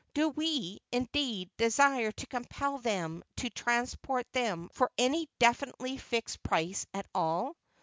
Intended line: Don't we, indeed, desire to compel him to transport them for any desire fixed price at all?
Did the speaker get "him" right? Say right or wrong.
wrong